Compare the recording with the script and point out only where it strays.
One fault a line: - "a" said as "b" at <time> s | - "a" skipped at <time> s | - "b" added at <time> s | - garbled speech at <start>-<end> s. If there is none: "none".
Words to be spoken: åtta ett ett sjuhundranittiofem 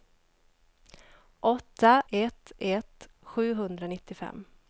none